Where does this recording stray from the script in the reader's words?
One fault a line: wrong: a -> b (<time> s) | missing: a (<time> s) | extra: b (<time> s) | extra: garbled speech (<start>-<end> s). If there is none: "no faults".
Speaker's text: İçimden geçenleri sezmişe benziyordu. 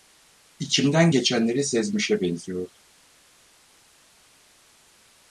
no faults